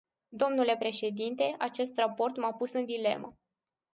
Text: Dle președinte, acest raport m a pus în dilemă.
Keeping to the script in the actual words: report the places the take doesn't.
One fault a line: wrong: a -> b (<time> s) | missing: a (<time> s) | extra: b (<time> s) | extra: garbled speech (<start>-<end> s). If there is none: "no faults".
no faults